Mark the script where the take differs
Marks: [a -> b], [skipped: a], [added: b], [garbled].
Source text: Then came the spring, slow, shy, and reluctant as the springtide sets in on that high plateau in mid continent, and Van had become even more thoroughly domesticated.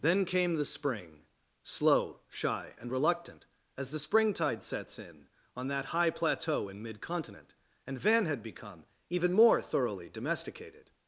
Then came the spring, slow, shy, and reluctant as the springtide sets in on that high plateau in mid continent, and Van had become even more thoroughly domesticated.